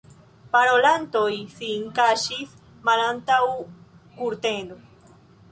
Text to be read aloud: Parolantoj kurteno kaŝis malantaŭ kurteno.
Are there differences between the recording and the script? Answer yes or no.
yes